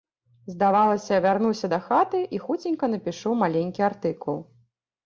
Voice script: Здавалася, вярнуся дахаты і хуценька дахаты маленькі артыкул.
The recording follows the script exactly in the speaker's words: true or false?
false